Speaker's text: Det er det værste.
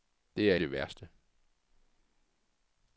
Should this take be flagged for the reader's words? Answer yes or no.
no